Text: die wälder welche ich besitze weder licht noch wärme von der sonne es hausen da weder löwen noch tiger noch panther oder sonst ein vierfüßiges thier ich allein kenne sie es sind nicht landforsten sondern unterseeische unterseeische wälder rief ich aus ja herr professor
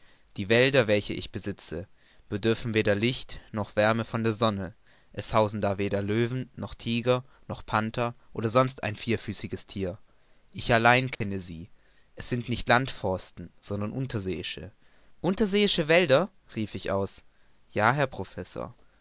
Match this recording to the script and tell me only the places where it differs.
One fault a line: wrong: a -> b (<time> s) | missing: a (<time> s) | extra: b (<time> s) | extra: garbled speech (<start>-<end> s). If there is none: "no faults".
extra: bedürfen (2.3 s)